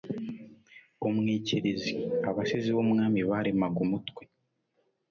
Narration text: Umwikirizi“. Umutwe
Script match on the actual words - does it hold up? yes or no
no